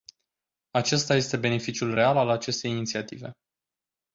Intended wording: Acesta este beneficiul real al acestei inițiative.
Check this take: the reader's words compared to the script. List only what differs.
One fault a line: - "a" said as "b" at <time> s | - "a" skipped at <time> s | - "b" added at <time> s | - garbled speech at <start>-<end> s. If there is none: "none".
none